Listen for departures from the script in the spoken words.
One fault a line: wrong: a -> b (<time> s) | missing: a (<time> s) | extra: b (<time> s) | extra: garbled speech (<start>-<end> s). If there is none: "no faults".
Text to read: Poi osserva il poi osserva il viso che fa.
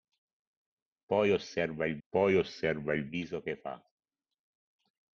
no faults